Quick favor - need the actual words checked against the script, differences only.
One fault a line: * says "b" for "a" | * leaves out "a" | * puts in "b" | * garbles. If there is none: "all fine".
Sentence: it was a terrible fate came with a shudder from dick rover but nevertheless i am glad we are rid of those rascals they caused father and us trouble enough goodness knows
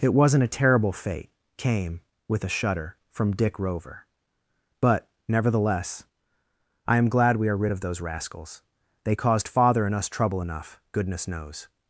* says "wasn't" for "was"